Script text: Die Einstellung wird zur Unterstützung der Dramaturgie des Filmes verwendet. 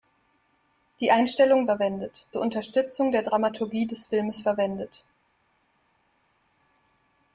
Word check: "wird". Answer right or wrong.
wrong